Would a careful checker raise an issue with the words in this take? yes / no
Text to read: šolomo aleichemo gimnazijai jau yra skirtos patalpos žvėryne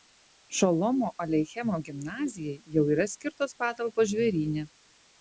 no